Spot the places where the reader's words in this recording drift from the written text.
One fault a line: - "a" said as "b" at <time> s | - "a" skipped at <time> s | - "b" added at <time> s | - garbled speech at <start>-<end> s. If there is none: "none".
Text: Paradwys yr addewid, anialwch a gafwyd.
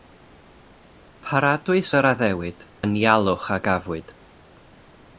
none